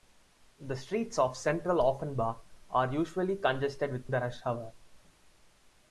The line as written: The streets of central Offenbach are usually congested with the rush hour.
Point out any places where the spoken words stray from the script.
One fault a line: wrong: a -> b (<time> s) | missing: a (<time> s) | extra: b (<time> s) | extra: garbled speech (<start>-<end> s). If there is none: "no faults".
no faults